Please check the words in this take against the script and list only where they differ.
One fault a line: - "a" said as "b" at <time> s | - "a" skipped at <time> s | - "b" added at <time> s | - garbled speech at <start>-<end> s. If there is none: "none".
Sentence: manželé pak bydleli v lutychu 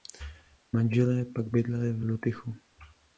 none